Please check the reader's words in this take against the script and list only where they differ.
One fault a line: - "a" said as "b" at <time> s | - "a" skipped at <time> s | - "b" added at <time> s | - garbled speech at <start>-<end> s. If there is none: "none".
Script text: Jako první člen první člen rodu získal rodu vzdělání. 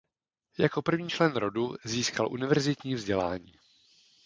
- "první člen" skipped at 1.3 s
- "rodu" said as "univerzitní" at 2.3 s